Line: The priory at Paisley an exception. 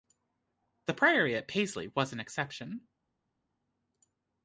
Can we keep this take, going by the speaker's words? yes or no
no